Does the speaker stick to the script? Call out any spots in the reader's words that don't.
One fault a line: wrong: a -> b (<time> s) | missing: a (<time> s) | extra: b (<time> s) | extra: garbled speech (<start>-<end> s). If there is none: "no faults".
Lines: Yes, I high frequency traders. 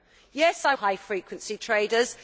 no faults